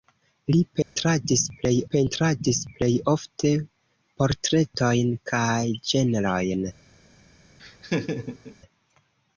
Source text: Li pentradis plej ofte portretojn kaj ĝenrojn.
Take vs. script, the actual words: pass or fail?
fail